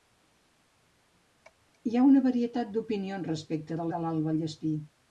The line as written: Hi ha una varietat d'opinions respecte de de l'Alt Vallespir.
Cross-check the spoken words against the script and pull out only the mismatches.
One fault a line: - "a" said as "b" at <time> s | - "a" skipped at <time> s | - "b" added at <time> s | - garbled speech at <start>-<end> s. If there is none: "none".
none